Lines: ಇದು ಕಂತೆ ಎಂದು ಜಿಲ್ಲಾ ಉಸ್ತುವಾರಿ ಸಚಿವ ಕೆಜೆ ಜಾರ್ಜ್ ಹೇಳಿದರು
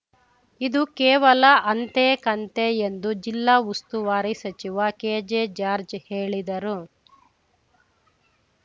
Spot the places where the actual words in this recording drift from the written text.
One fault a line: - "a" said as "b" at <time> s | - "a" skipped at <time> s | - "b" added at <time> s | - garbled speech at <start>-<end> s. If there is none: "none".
- "ಕೇವಲ ಅಂತೆ" added at 1.0 s